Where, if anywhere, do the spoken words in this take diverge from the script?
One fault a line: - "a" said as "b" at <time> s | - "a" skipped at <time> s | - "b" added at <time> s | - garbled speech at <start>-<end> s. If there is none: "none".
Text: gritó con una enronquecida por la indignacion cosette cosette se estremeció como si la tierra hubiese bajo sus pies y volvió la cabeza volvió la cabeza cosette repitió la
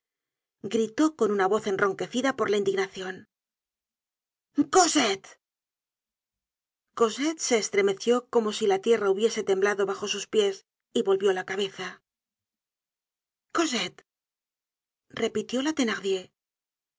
- "voz" added at 1.5 s
- "temblado" added at 9.4 s
- "volvió la cabeza" skipped at 12.0 s